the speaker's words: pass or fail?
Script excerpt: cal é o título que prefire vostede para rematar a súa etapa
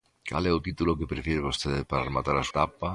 fail